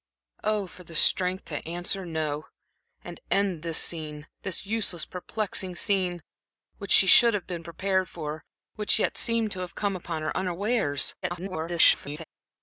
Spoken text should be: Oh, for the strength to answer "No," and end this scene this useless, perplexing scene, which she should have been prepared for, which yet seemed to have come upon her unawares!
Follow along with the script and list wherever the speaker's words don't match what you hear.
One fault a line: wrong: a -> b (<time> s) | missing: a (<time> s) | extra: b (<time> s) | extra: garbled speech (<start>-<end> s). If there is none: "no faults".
extra: garbled speech (11.2-12.2 s)